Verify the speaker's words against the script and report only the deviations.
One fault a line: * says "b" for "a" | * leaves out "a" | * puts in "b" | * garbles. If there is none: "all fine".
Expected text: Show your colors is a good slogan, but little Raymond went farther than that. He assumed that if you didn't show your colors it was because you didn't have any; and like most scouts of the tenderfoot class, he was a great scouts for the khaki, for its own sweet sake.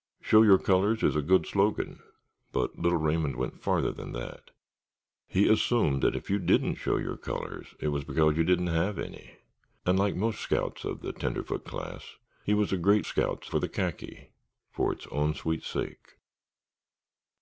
all fine